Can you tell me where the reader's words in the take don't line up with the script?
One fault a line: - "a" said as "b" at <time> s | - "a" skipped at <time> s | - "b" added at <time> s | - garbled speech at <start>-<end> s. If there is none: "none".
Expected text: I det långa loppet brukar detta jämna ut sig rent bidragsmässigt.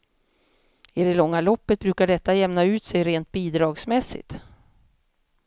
none